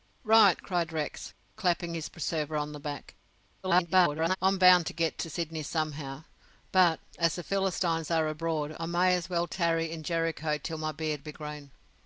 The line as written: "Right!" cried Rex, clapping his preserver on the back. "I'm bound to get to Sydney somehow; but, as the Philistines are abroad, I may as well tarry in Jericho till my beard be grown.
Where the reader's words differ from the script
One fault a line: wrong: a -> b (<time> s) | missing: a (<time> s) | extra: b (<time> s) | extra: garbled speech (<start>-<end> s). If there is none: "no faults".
extra: garbled speech (3.6-4.4 s)